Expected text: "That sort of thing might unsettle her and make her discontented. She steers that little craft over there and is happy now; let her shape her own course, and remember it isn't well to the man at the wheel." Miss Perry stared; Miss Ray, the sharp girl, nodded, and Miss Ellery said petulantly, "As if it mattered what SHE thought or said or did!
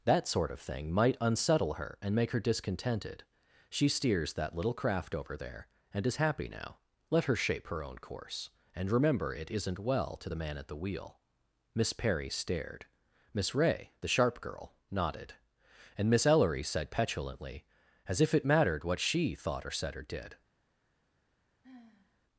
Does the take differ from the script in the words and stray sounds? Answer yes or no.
yes